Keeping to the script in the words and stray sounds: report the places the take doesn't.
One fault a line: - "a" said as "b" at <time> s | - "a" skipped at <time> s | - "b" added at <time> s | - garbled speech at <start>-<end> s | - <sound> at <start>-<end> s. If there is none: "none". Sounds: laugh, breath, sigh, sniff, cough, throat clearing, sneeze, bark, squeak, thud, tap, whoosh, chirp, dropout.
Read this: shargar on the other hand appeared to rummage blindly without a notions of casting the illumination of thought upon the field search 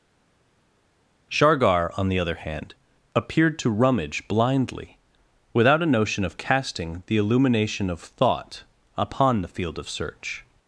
- "notions" said as "notion" at 5.9 s
- "of" added at 9.8 s